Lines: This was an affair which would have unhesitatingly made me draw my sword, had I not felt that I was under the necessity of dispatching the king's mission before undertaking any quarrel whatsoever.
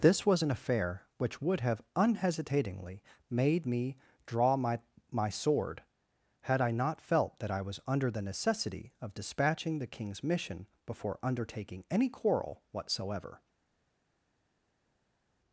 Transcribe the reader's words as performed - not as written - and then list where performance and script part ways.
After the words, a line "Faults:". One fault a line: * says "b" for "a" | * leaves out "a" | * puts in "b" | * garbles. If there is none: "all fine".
This was an affair which would have unhesitatingly made me draw my my sword, had I not felt that I was under the necessity of dispatching the king's mission before undertaking any quarrel whatsoever.
Faults:
* puts in "my"